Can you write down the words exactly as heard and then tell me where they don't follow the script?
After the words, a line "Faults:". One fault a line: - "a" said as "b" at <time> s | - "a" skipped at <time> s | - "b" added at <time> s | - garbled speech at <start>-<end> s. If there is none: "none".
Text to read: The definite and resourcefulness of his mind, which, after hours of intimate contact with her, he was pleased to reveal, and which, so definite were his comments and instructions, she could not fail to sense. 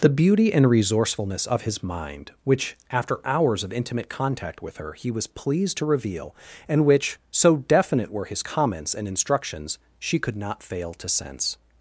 The beauty and resourcefulness of his mind, which, after hours of intimate contact with her, he was pleased to reveal, and which, so definite were his comments and instructions, she could not fail to sense.
Faults:
- "definite" said as "beauty" at 0.1 s